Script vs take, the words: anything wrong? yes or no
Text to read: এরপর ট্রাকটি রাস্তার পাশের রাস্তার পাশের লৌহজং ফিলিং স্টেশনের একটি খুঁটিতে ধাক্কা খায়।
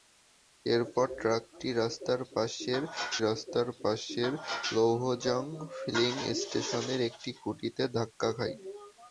no